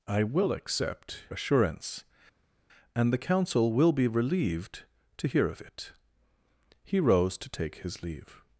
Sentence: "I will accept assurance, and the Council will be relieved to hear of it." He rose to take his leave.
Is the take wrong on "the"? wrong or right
right